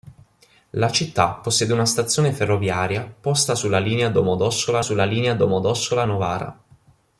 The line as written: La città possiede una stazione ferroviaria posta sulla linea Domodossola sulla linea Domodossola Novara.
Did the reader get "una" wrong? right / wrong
right